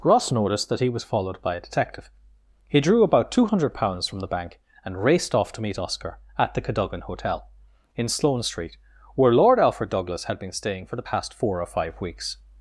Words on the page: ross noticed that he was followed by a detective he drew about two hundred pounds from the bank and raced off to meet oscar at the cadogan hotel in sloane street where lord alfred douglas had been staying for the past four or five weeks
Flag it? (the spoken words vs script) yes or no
no